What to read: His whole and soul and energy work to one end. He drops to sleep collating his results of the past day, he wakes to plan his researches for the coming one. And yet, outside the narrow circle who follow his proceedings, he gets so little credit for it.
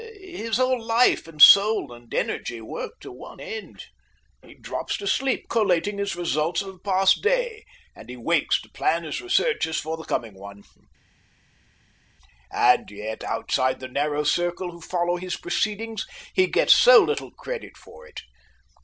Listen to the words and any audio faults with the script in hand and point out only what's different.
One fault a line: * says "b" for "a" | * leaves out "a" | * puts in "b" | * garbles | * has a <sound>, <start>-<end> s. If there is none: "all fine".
* puts in "life"
* puts in "and"